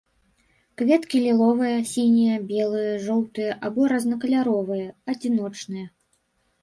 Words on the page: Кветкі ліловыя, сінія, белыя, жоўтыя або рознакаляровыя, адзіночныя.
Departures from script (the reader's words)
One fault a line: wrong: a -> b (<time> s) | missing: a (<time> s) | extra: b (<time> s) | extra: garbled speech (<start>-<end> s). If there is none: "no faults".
no faults